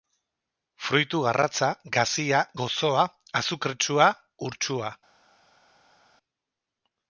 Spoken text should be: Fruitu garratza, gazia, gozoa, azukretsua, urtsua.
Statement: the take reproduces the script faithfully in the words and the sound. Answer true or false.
true